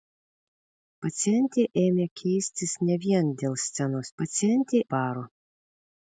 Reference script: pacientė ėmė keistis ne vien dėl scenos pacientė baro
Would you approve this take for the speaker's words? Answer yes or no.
yes